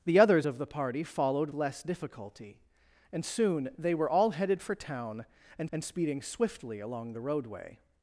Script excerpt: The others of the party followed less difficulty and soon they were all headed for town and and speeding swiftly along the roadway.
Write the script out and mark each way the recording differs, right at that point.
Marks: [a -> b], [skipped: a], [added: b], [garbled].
The others of the party followed less difficulty and soon they were all headed for town and and speeding swiftly along the roadway.